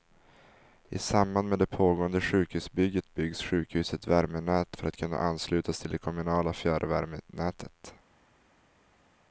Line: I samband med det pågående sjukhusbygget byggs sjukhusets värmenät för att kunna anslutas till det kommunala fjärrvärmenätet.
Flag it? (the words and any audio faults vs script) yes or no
no